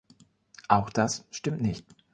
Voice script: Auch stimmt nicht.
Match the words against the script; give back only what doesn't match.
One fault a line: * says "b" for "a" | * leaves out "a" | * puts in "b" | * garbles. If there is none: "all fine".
* puts in "das"